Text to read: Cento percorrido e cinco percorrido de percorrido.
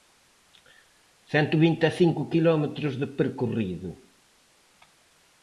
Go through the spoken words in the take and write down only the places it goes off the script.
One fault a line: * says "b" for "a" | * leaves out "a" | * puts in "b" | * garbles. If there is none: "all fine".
* says "vinte" for "percorrido"
* says "quilómetros" for "percorrido"